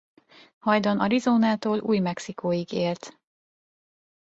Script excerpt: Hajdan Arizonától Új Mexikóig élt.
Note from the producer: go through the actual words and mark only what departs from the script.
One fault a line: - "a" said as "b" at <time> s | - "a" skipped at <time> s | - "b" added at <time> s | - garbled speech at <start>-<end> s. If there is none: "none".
none